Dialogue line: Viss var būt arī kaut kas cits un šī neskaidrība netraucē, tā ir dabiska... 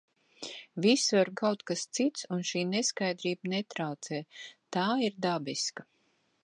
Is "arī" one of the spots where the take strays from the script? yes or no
yes